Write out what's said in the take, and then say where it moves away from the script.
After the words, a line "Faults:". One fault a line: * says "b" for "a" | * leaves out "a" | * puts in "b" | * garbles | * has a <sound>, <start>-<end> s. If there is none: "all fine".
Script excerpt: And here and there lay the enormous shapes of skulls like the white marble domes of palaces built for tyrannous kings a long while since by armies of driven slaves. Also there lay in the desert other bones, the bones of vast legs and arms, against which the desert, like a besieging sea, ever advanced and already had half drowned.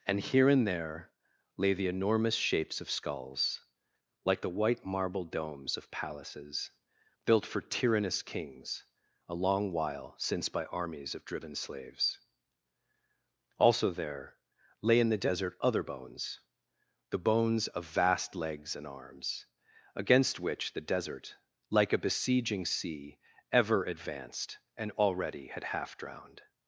And here and there lay the enormous shapes of skulls like the white marble domes of palaces built for tyrannous kings a long while since by armies of driven slaves. Also there lay in the desert other bones, the bones of vast legs and arms, against which the desert, like a besieging sea, ever advanced and already had half drowned.
Faults:
all fine